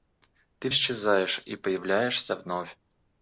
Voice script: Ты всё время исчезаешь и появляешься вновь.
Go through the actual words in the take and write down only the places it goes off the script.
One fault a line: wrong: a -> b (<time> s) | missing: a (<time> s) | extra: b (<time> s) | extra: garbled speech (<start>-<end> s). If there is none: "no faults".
missing: всё время (0.7 s)